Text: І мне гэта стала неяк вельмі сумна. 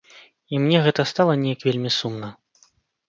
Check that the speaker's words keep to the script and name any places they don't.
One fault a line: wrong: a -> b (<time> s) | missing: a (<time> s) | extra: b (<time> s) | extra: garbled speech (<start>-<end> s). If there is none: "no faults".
no faults